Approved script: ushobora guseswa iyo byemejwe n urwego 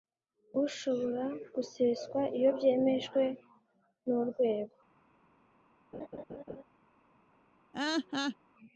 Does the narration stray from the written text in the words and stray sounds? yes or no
yes